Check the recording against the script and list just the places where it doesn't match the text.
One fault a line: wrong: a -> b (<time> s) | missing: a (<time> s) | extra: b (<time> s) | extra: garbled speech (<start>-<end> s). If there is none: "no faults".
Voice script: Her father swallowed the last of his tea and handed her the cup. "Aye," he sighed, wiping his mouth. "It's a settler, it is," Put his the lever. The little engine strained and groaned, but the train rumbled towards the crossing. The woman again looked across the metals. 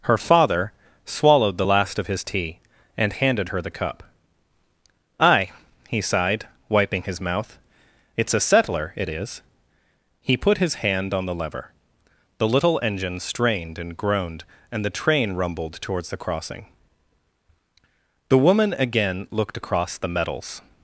extra: He (10.2 s)
extra: hand on (10.8 s)
wrong: but -> and (14.7 s)